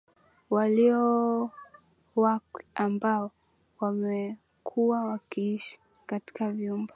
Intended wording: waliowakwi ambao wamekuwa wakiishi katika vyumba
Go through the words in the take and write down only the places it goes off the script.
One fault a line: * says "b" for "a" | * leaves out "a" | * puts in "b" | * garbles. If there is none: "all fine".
all fine